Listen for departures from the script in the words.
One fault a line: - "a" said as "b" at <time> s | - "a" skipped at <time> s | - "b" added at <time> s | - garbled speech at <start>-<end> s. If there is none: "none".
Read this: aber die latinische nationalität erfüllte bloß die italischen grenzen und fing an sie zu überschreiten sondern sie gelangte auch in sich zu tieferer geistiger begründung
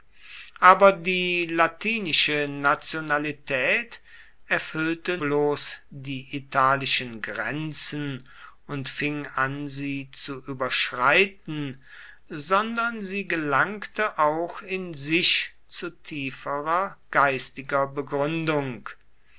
none